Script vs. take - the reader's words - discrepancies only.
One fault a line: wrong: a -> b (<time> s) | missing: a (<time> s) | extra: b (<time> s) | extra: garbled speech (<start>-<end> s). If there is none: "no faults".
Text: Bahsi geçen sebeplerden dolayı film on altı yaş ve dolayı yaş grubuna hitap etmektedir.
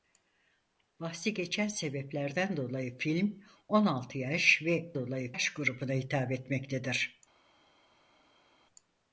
no faults